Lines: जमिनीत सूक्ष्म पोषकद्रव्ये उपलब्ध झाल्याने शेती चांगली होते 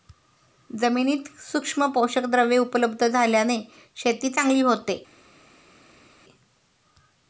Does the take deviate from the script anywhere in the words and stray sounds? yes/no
no